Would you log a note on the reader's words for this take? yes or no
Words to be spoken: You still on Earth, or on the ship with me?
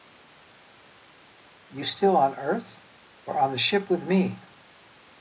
no